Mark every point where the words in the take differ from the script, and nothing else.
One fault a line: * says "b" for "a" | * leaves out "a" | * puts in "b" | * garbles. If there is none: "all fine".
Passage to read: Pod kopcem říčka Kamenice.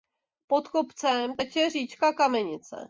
* puts in "teče"